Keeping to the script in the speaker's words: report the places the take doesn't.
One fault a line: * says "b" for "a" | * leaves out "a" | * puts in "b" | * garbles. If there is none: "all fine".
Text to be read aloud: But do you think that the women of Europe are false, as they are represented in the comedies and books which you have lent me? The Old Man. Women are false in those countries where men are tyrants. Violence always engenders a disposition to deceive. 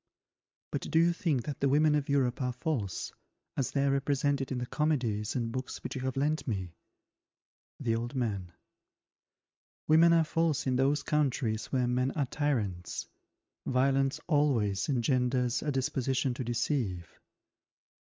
all fine